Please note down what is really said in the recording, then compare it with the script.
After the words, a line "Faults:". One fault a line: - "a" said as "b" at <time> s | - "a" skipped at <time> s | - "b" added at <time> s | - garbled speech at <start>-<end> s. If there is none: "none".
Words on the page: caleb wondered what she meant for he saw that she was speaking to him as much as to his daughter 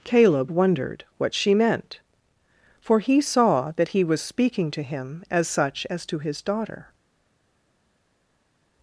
caleb wondered what she meant for he saw that he was speaking to him as such as to his daughter
Faults:
- "she" said as "he" at 3.9 s
- "much" said as "such" at 5.5 s